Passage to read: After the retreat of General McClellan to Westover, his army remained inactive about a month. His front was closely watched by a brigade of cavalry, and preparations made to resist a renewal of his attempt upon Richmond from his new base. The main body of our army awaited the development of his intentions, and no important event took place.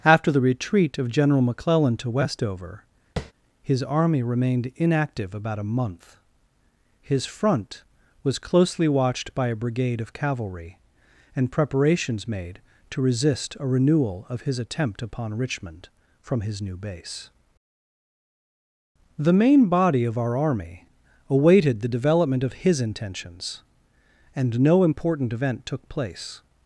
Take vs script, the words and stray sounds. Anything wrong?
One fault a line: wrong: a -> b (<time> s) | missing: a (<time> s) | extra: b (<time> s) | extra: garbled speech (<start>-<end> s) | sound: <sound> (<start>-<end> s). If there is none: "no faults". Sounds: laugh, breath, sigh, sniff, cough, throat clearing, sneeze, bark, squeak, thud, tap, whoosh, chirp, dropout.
sound: tap (3.2-3.3 s)